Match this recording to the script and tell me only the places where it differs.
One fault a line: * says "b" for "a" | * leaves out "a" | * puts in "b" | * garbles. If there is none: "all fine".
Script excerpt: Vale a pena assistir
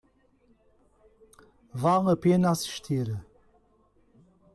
all fine